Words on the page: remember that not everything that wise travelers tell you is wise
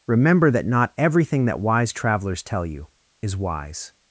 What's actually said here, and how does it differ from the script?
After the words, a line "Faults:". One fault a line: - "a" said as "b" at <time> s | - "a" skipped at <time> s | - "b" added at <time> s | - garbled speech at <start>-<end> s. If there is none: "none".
remember that not everything that wise travelers tell you is wise
Faults:
none